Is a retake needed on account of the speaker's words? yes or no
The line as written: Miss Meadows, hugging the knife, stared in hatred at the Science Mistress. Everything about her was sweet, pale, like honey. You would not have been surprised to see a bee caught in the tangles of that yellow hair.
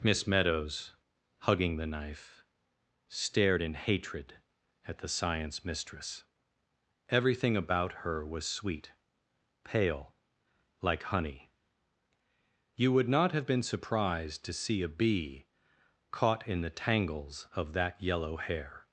no